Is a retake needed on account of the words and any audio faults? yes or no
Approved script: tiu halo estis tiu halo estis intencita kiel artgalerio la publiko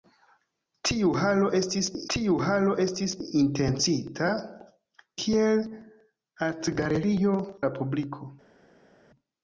no